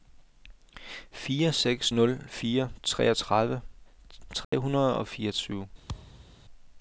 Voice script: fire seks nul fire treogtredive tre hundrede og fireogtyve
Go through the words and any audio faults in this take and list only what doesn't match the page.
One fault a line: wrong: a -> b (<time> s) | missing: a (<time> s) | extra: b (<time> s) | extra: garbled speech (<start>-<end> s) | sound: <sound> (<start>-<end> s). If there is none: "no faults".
sound: dropout (4.4-4.5 s)
sound: thud (5.9-6.4 s)